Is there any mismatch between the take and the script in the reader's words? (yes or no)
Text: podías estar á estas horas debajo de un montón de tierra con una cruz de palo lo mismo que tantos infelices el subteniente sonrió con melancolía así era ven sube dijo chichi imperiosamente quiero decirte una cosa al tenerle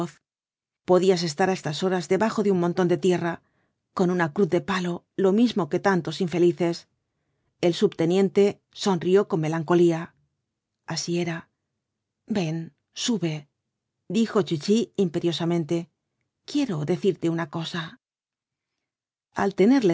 no